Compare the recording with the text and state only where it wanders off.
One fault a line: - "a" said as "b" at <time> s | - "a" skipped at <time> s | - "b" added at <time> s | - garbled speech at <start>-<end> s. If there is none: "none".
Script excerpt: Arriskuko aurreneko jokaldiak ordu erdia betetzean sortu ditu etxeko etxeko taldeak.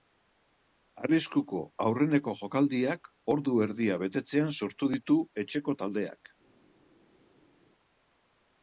- "etxeko" skipped at 5.8 s